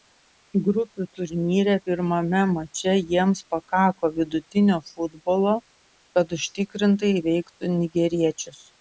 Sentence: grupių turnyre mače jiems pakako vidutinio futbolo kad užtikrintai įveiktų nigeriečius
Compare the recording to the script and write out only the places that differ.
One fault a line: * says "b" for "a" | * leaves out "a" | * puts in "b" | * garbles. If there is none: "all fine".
* puts in "pirmame"